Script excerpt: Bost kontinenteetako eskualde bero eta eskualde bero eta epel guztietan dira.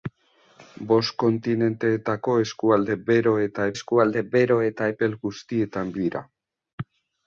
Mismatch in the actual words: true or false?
false